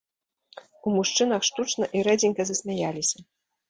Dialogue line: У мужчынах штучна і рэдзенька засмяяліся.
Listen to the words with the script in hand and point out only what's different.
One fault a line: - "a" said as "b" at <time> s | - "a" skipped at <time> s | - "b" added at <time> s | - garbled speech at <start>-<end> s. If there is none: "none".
none